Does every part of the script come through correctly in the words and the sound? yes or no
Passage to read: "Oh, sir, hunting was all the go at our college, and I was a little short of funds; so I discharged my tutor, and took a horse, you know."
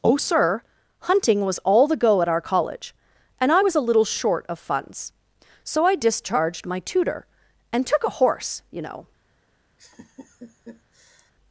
no